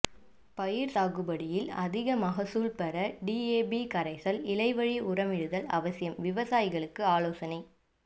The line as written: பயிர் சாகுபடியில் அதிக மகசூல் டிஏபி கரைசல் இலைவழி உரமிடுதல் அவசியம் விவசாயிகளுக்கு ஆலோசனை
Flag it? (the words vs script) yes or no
yes